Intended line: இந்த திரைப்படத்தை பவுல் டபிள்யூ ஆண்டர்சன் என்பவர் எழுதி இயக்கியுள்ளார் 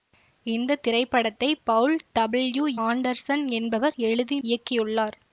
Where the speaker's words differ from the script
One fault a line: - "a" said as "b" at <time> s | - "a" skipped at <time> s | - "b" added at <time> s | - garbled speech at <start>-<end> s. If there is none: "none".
none